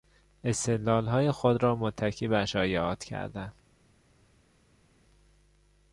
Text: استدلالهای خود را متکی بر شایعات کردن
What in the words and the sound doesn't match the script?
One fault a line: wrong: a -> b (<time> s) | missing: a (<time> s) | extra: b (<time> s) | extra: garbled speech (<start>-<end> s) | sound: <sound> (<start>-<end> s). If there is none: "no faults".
no faults